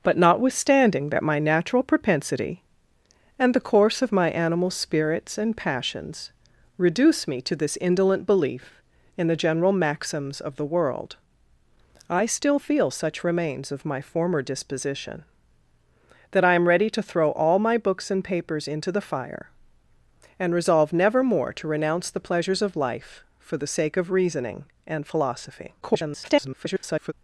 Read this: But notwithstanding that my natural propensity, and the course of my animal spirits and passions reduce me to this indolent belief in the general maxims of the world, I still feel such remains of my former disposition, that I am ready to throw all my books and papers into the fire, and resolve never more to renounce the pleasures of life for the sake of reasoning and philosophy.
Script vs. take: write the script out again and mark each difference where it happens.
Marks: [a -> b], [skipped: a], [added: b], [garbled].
But notwithstanding that my natural propensity, and the course of my animal spirits and passions reduce me to this indolent belief in the general maxims of the world, I still feel such remains of my former disposition, that I am ready to throw all my books and papers into the fire, and resolve never more to renounce the pleasures of life for the sake of reasoning and philosophy. [garbled]